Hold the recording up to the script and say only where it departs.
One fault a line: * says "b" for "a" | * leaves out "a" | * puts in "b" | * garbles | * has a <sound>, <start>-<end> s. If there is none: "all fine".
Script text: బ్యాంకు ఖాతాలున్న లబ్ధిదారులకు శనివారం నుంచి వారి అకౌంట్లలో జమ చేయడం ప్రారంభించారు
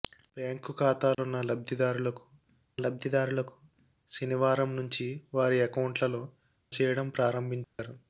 * has a dropout, 1.1-1.2 s
* puts in "లబ్ధిదారులకు"
* leaves out "జమ"
* has a dropout, 7.6-7.8 s